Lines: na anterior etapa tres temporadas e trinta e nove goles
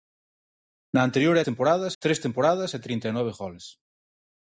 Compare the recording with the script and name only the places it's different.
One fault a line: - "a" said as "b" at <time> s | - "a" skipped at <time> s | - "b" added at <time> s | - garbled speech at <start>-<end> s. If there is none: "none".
- "etapa" said as "temporadas" at 1.5 s